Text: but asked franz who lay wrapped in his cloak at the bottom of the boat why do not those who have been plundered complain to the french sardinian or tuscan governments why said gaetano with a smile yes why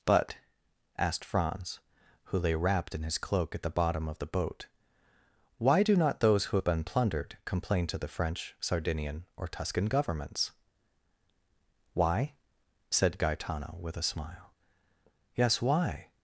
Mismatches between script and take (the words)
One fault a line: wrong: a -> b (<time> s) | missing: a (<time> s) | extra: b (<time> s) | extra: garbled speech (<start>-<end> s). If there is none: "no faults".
no faults